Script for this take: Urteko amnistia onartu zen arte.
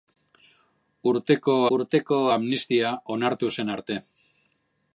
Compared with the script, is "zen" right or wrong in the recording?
right